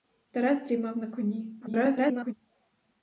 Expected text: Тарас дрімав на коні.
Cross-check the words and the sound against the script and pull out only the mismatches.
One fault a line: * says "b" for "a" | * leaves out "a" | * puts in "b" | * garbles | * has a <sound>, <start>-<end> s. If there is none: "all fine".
* garbles